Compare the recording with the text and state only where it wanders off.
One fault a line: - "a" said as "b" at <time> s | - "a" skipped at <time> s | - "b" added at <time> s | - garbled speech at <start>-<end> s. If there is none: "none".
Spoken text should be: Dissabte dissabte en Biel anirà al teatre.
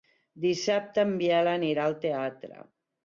- "dissabte" skipped at 1.0 s